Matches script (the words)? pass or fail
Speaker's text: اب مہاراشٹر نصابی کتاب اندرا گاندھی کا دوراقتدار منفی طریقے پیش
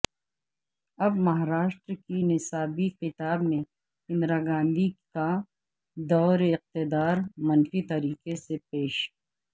fail